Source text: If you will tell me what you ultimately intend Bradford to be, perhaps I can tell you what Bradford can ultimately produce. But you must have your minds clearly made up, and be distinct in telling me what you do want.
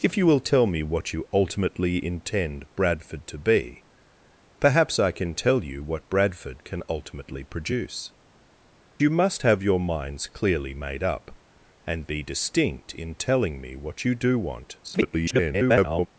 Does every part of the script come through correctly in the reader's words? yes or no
no